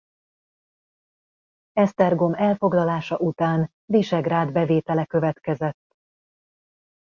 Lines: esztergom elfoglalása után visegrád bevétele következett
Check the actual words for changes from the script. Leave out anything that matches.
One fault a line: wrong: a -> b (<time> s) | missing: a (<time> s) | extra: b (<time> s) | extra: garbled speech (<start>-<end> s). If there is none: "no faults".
no faults